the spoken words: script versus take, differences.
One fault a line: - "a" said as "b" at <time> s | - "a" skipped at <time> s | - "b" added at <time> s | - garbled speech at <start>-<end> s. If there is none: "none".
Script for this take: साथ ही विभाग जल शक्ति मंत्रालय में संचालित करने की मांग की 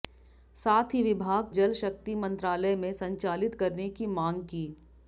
none